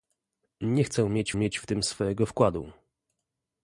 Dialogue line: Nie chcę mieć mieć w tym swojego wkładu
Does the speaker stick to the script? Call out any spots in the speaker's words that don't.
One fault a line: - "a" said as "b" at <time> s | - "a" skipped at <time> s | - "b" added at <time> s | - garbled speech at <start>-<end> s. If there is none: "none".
none